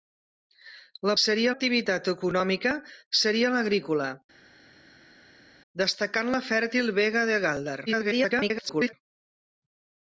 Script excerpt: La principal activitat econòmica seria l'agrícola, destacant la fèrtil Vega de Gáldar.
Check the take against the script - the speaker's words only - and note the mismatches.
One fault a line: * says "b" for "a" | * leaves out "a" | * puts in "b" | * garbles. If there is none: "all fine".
* says "seria" for "principal"
* garbles